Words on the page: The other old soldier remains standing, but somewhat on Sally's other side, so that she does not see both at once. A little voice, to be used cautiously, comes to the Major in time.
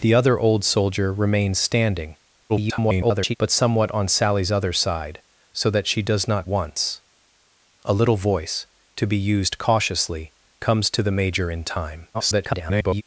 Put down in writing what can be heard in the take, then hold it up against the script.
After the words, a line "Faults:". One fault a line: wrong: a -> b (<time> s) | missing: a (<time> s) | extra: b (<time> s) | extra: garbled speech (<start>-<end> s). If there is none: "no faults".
The other old soldier remains standing, [garbled] but somewhat on Sally's other side, so that she does not once. A little voice, to be used cautiously, comes to the Major in time. [garbled]
Faults:
extra: garbled speech (2.5-3.4 s)
missing: see both at (6.5 s)
extra: garbled speech (12.1-13.0 s)